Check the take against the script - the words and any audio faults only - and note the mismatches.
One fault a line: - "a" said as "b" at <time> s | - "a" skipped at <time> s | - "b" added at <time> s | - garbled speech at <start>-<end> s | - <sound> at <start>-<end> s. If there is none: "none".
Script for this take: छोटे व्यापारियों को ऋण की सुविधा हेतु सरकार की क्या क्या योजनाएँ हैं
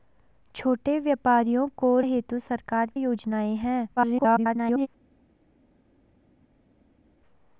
- "ऋण की सुविधा" skipped at 2.0 s
- "की क्या क्या" skipped at 2.9 s
- garbled speech at 4.0-4.9 s